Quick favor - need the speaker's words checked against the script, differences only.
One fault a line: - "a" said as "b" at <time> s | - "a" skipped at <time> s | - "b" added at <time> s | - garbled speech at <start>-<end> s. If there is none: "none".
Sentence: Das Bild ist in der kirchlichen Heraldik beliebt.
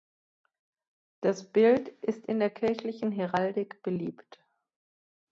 none